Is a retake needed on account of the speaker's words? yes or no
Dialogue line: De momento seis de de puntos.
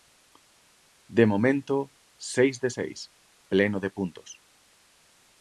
yes